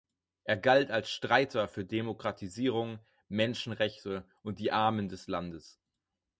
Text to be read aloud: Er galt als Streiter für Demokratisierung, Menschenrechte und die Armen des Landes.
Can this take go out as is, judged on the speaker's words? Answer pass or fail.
pass